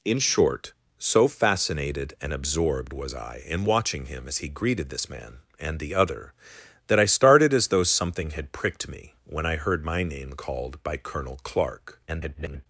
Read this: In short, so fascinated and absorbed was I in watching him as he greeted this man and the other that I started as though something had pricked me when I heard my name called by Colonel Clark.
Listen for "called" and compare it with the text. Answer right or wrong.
right